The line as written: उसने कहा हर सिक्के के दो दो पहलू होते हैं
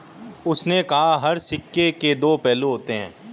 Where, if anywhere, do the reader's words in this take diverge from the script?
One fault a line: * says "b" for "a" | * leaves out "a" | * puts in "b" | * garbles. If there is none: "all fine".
* leaves out "दो"